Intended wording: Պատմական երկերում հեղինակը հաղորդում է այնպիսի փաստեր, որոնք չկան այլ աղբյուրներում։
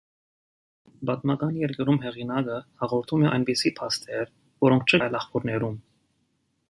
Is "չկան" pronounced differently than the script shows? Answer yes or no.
yes